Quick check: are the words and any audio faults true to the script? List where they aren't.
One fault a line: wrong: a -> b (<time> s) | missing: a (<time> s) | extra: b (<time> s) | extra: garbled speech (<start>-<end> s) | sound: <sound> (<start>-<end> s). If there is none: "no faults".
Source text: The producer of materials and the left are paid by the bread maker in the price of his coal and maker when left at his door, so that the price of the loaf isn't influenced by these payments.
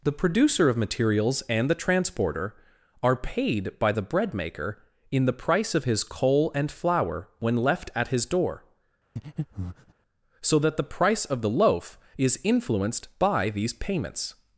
wrong: left -> transporter (1.8 s)
wrong: maker -> flour (6.7 s)
sound: breath (9.2-9.9 s)
wrong: isn't -> is (12.2 s)